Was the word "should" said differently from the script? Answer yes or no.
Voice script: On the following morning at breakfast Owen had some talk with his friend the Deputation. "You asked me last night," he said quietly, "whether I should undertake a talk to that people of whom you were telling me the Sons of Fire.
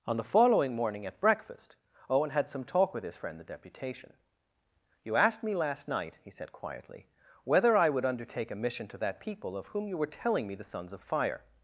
yes